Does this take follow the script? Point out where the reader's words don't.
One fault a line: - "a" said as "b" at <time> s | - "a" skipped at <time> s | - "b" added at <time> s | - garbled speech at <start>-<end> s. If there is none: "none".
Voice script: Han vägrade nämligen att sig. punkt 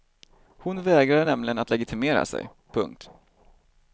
- "Han" said as "Hon" at 0.6 s
- "legitimera" added at 1.7 s